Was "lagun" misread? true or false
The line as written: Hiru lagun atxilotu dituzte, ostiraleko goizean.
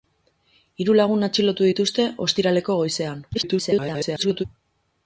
false